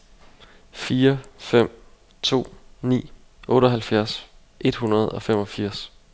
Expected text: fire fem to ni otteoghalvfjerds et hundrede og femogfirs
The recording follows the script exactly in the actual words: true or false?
true